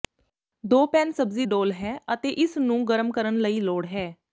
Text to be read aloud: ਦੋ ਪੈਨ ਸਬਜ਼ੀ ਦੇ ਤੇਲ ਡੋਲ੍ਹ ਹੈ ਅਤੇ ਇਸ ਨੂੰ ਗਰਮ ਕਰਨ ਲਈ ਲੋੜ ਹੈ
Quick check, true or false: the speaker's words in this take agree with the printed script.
false